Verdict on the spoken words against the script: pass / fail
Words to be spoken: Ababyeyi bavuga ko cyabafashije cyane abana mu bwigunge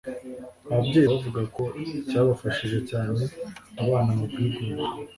pass